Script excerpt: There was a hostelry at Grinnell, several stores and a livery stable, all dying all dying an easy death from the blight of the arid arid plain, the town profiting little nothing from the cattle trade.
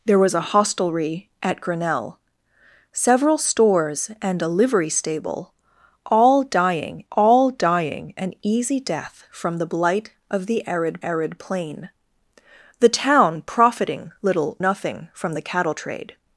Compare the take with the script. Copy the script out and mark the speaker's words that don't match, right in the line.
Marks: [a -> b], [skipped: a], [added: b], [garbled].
There was a hostelry at Grinnell, several stores and a livery stable, all dying all dying an easy death from the blight of the arid arid plain, the town profiting little nothing from the cattle trade.